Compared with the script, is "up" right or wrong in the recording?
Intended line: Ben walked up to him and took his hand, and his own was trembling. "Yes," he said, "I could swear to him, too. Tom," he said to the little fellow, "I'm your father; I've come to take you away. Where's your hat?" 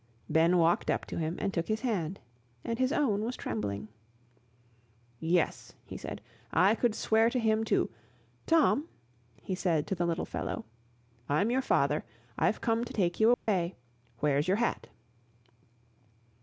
right